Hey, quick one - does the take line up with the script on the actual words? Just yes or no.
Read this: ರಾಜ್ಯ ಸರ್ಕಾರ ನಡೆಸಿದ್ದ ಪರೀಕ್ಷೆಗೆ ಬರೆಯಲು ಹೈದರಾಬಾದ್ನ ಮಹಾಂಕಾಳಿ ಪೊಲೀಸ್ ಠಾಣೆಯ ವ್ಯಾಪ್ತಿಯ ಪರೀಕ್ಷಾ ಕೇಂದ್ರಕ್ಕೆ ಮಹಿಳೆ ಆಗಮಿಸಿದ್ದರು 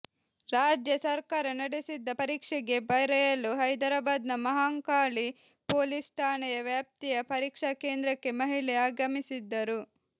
yes